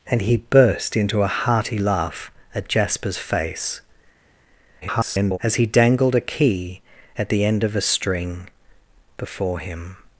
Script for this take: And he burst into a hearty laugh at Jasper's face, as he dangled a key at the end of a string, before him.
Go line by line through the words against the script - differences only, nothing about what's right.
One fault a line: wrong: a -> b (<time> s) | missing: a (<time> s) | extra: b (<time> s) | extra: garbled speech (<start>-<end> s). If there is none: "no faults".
extra: garbled speech (4.8-5.4 s)